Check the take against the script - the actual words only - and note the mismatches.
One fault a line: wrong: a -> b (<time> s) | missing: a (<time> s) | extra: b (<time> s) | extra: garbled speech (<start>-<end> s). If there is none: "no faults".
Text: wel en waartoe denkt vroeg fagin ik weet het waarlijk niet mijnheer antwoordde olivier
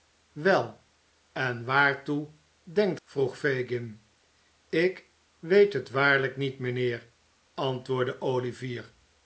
no faults